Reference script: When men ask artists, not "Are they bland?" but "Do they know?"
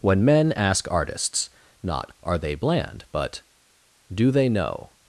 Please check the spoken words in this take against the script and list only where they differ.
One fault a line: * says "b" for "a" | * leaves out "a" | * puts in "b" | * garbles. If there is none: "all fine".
all fine